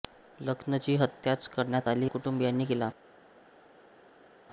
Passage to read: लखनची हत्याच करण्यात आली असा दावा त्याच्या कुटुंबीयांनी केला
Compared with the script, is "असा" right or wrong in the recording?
wrong